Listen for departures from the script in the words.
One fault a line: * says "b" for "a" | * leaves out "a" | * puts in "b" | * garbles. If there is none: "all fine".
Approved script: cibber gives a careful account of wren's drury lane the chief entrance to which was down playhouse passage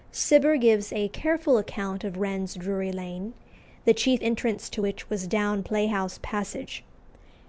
all fine